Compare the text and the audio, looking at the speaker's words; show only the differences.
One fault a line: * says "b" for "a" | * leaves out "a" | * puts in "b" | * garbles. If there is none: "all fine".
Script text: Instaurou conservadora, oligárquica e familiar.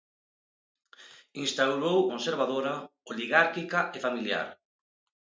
all fine